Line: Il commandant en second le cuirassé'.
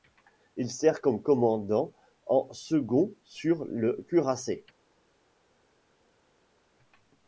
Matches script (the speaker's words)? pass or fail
fail